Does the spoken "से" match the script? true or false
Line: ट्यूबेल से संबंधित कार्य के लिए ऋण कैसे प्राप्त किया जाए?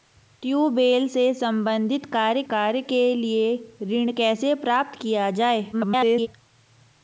true